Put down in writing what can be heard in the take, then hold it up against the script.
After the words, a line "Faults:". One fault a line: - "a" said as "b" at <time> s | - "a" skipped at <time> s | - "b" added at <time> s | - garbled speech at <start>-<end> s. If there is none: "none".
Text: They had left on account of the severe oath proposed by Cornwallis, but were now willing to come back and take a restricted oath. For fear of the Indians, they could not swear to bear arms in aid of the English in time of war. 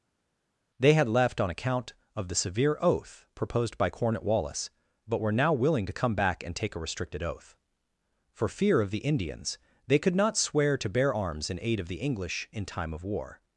They had left on account of the severe oath proposed by Cornwallis, but were now willing to come back and take a restricted oath. For fear of the Indians, they could not swear to bear arms in aid of the English in time of war.
Faults:
none